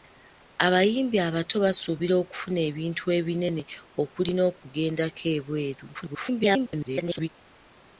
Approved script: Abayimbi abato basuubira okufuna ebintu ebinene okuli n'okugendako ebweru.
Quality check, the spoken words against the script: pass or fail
fail